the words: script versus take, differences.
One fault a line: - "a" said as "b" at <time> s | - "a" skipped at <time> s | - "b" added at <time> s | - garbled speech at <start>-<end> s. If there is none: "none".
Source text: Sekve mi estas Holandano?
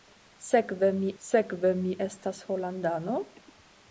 - "sekve mi" added at 1.2 s